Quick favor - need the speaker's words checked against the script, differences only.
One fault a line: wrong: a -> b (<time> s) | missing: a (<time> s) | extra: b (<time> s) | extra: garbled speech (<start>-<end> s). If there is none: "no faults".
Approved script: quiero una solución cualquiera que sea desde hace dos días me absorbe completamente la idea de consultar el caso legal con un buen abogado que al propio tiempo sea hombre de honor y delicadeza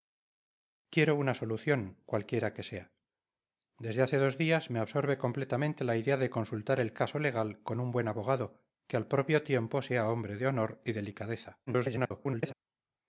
extra: garbled speech (11.7-12.5 s)